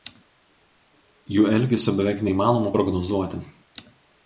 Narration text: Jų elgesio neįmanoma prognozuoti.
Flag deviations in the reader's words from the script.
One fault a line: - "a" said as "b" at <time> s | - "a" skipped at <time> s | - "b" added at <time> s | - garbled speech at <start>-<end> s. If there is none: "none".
- "beveik" added at 2.0 s